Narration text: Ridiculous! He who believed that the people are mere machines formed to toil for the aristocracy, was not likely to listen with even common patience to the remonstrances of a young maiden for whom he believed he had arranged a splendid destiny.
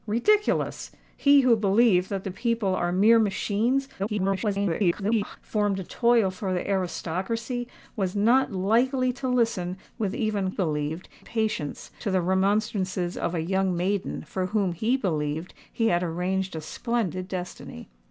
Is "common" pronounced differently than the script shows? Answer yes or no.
yes